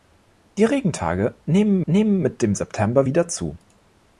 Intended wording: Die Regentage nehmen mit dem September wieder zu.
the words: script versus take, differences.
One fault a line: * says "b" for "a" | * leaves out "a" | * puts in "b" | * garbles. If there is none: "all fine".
* puts in "nehmen"